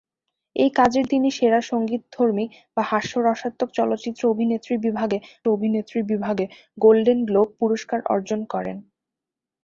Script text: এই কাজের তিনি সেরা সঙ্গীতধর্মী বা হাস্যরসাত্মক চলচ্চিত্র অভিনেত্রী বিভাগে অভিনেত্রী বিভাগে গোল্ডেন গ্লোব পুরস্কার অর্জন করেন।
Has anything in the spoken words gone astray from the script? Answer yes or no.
no